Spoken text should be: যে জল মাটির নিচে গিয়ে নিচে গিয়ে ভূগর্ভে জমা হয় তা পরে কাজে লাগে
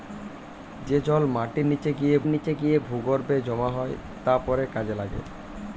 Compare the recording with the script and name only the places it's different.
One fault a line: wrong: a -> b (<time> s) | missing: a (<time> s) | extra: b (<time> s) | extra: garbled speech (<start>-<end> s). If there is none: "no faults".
no faults